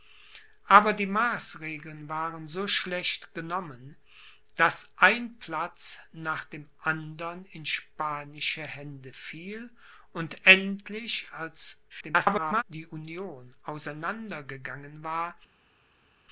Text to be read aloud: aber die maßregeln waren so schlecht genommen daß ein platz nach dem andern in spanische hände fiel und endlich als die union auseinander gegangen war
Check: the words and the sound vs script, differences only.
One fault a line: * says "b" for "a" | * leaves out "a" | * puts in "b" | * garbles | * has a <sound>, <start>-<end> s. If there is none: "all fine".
* garbles